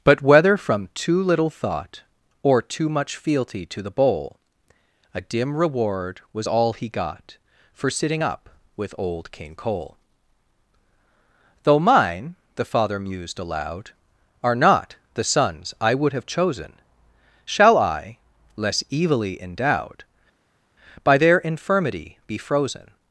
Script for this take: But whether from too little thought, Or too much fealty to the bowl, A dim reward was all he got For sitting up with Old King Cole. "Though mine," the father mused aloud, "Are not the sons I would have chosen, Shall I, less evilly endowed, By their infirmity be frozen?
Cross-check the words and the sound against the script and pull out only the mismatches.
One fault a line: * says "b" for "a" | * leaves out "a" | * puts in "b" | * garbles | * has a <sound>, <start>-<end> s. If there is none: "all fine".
all fine